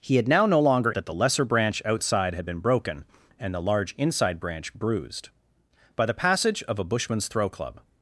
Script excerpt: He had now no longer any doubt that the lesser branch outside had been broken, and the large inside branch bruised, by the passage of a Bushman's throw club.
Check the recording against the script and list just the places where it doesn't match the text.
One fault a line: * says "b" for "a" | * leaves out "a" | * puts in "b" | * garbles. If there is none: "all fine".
* leaves out "any doubt"